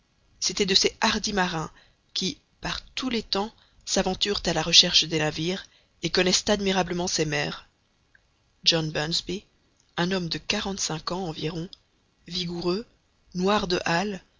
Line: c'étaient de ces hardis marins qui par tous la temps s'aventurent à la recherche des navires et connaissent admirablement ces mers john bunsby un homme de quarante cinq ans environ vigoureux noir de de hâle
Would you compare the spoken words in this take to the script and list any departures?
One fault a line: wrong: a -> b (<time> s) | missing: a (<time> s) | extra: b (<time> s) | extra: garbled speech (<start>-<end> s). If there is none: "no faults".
wrong: la -> les (3.1 s)
missing: de (13.8 s)